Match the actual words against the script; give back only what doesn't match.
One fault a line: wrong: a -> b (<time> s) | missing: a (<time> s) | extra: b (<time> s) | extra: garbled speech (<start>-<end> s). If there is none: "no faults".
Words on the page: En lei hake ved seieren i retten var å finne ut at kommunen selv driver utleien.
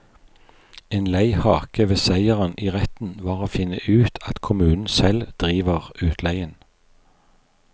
no faults